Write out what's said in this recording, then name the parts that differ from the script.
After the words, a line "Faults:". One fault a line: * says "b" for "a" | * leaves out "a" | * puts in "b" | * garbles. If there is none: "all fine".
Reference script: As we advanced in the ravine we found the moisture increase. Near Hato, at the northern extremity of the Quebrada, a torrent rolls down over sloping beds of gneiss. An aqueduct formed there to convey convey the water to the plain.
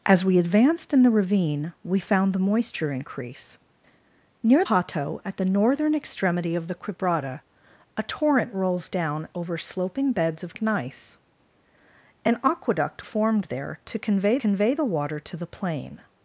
As we advanced in the ravine we found the moisture increase. Near Hato, at the northern extremity of the Quebrada, a torrent rolls down over sloping beds of gneiss. An aqueduct formed there to convey convey the water to the plain.
Faults:
all fine